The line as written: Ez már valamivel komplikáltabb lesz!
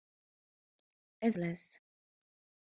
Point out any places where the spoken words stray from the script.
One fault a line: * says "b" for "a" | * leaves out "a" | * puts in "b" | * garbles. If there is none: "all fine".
* leaves out "már valamivel komplikáltabb"